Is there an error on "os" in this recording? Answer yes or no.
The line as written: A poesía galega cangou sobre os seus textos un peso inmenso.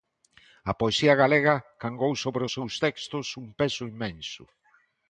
no